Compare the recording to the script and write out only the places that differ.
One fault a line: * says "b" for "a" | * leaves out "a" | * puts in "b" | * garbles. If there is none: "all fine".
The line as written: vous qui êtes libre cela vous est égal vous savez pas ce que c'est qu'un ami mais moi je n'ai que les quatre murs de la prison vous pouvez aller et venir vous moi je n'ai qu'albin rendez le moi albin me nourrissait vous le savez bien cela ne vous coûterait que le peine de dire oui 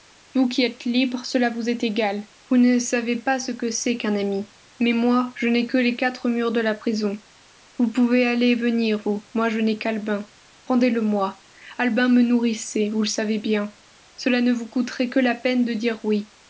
* puts in "ne"
* says "la" for "le"